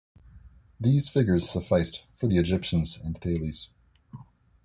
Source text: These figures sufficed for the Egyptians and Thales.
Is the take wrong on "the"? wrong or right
right